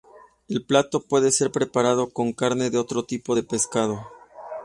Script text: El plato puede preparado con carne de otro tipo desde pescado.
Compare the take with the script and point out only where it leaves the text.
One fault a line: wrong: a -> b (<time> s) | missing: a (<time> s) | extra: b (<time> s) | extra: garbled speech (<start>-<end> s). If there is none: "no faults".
extra: ser (1.3 s)
wrong: desde -> de (3.3 s)